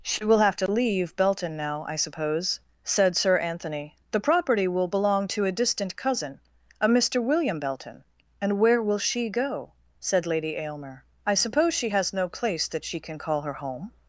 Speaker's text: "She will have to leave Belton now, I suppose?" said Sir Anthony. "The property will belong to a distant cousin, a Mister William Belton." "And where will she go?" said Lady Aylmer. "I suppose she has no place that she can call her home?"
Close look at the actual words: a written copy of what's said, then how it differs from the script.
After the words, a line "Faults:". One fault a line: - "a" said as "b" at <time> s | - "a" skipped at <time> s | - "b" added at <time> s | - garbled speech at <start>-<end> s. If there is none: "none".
"She will have to leave Belton now, I suppose?" said Sir Anthony. "The property will belong to a distant cousin, a Mister William Belton." "And where will she go?" said Lady Aylmer. "I suppose she has no place that she can call her home?"
Faults:
none